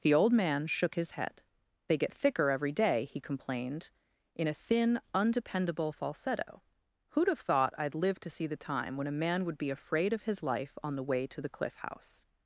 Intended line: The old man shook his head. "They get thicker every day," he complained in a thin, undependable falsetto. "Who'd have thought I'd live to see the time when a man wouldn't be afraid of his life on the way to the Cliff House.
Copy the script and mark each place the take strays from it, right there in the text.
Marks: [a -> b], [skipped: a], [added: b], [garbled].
The old man shook his head. "They get thicker every day," he complained in a thin, undependable falsetto. "Who'd have thought I'd live to see the time when a man [wouldn't -> would] be afraid of his life on the way to the Cliff House.